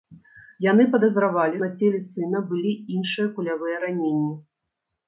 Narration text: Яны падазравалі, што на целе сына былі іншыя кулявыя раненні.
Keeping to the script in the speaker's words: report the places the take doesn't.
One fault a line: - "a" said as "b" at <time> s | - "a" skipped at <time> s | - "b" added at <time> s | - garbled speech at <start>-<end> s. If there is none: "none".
- "што" skipped at 1.6 s